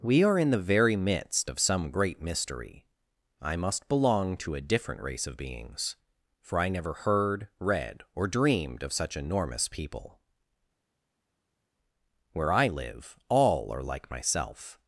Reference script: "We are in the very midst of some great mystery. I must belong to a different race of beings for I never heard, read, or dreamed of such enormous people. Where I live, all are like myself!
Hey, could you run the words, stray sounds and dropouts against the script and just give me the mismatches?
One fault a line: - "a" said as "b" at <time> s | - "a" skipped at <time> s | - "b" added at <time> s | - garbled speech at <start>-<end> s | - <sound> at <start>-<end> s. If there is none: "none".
none